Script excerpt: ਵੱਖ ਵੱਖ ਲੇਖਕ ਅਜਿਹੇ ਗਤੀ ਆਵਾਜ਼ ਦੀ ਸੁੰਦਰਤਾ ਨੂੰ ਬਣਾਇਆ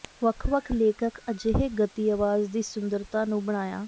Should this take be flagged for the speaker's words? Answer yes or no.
no